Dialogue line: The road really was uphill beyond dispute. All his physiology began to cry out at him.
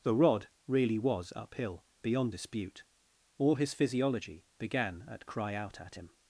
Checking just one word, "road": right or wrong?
wrong